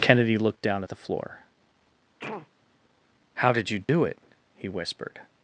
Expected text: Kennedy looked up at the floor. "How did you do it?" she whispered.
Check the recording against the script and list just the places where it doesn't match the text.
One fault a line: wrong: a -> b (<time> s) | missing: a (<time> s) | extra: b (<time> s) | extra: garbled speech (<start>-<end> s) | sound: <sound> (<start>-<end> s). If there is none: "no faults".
wrong: up -> down (0.6 s)
sound: sneeze (2.2-2.5 s)
sound: dropout (3.8-3.9 s)
wrong: she -> he (4.5 s)